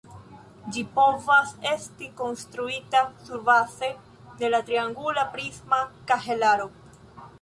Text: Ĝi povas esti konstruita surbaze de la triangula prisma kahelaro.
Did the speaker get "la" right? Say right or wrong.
right